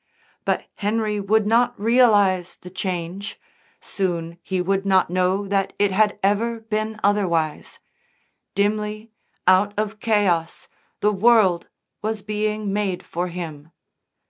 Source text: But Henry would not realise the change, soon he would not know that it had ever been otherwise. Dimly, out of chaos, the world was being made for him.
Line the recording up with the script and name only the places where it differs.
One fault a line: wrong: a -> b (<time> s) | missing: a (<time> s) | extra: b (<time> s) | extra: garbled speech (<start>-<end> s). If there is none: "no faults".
no faults